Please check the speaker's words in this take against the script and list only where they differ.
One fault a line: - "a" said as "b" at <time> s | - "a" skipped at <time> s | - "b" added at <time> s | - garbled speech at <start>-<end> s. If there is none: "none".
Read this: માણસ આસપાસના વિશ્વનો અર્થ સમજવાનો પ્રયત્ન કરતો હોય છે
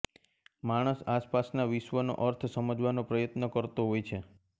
none